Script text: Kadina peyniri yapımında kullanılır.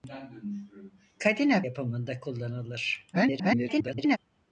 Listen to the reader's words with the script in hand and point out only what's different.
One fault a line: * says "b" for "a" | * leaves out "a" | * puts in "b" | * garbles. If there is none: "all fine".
* leaves out "peyniri"
* garbles